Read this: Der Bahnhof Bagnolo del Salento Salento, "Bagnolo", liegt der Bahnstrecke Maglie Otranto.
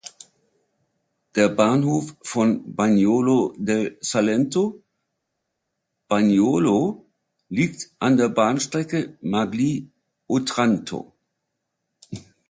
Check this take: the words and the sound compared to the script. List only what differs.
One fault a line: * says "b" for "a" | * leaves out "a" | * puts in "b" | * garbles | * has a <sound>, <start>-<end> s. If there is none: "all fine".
* puts in "von"
* leaves out "Salento"
* puts in "an"